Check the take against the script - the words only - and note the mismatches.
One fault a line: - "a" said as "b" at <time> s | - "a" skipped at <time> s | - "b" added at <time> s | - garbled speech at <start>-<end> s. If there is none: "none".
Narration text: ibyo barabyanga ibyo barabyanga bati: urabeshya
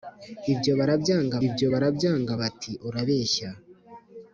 none